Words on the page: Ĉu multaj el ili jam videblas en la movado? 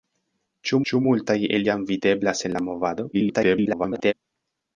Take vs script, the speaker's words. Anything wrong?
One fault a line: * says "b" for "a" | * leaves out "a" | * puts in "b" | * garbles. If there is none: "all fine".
* puts in "ĉu"
* leaves out "ili"
* garbles